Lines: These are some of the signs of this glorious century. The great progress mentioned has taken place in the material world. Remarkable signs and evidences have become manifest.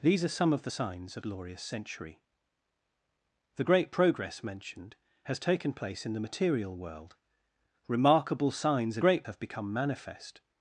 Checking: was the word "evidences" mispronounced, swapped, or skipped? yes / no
yes